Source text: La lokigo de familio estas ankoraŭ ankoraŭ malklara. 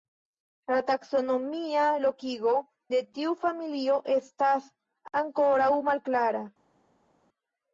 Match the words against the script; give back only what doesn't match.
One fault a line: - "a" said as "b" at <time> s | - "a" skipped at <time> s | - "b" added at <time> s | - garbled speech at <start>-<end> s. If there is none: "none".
- "taksonomia" added at 0.9 s
- "tiu" added at 3.2 s
- "ankoraŭ" skipped at 5.7 s